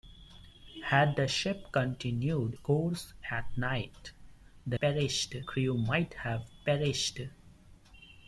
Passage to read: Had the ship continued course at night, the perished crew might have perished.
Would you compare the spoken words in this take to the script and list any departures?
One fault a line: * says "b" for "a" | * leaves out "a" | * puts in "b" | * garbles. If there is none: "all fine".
all fine